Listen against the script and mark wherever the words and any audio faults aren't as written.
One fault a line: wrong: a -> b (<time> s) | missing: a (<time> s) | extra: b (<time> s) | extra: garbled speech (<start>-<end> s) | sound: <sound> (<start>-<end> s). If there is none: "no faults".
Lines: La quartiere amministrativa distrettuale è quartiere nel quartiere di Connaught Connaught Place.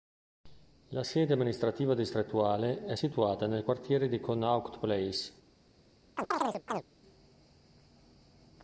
wrong: quartiere -> sede (1.0 s)
wrong: quartiere -> situata (2.9 s)
missing: Connaught (4.8 s)
sound: chirp (6.2-6.8 s)